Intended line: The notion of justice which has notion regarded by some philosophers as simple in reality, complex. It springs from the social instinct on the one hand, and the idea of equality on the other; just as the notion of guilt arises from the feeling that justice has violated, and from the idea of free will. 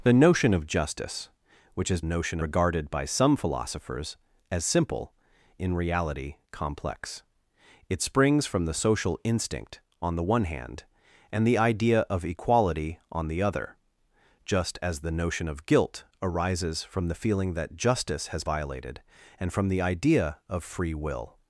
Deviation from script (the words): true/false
false